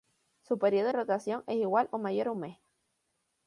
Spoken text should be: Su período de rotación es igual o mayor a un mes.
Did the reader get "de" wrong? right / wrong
wrong